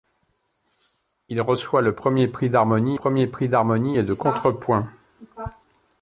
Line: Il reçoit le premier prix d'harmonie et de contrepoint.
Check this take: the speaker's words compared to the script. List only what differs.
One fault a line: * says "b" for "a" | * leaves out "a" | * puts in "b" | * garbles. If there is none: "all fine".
* puts in "premier prix d'harmonie"